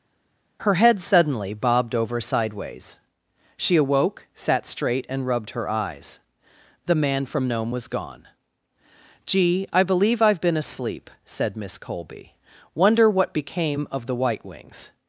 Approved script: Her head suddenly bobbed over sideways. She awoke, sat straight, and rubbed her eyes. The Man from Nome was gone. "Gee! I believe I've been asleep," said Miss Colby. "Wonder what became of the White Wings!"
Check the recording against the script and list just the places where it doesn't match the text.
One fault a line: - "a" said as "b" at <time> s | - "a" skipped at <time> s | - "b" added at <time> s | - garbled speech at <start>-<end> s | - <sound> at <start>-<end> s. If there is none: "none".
none